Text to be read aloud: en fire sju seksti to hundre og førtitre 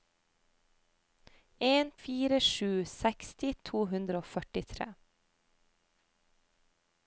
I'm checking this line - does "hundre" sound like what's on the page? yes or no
yes